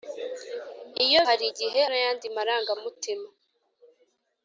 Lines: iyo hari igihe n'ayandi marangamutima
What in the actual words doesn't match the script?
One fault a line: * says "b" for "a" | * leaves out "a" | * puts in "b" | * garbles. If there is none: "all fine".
all fine